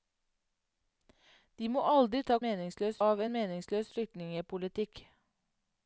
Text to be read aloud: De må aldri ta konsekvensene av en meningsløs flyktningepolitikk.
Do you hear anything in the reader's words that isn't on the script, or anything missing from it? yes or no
yes